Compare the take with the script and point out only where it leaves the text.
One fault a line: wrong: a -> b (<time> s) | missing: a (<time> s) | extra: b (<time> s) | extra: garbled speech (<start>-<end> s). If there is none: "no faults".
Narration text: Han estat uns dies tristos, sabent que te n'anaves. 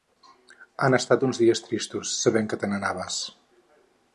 no faults